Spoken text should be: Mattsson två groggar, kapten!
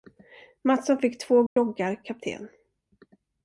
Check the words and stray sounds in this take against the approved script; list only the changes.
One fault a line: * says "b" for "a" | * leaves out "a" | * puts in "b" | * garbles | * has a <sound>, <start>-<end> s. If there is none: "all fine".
* puts in "fick"
* has a dropout, 1.5-1.6 s